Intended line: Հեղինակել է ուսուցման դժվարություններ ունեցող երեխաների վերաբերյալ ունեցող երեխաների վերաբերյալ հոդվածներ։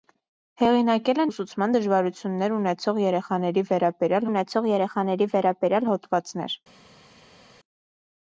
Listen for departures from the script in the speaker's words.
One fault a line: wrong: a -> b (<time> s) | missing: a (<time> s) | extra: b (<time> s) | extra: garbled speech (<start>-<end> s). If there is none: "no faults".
no faults